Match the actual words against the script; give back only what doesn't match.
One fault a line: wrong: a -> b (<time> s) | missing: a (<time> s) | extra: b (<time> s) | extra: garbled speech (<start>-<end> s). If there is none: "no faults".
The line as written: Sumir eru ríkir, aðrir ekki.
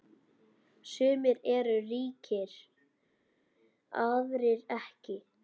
no faults